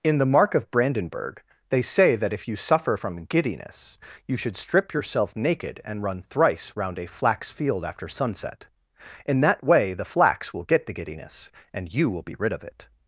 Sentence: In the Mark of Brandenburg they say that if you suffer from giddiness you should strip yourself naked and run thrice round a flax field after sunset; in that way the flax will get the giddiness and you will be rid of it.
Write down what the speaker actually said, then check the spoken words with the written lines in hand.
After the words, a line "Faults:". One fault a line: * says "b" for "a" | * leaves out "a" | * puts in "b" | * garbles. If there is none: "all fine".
In the Mark of Brandenburg they say that if you suffer from giddiness you should strip yourself naked and run thrice round a flax field after sunset; in that way the flax will get the giddiness and you will be rid of it.
Faults:
all fine